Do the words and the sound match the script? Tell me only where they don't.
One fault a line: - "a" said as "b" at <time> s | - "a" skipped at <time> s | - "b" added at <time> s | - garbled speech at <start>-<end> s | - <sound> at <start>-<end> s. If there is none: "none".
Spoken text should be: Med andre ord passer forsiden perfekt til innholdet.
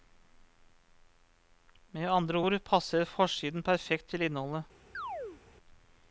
- chirp at 4.9-5.4 s